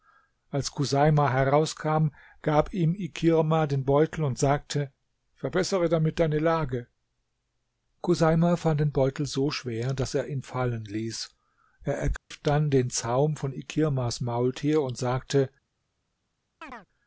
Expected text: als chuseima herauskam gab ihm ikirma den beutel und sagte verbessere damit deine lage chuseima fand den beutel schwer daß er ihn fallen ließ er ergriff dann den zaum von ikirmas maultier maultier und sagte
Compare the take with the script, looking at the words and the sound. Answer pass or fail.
fail